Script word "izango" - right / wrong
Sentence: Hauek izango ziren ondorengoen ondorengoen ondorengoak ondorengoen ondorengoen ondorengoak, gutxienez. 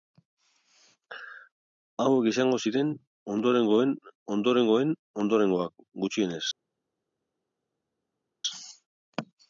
right